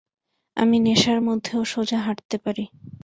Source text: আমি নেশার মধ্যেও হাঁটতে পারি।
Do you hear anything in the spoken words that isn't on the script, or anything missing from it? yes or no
yes